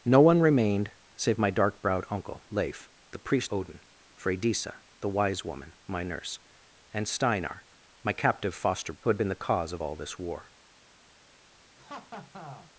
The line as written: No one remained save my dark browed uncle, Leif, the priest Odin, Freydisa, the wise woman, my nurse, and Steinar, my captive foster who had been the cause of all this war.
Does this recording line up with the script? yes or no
yes